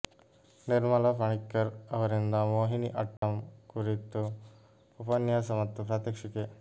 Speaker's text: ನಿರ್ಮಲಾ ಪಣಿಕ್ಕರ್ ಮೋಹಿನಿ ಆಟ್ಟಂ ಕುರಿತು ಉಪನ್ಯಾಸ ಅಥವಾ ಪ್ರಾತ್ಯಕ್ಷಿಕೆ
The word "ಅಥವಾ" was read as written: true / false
false